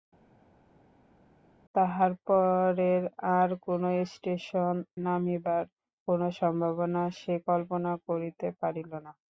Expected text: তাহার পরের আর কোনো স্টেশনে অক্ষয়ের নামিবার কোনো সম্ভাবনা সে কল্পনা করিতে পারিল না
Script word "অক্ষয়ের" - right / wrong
wrong